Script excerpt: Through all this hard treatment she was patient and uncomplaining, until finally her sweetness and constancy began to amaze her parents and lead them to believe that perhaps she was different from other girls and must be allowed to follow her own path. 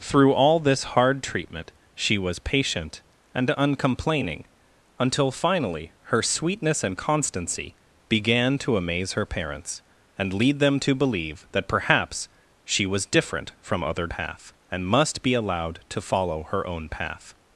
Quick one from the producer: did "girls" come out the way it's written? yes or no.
no